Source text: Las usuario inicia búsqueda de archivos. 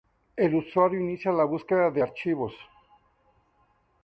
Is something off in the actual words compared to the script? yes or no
yes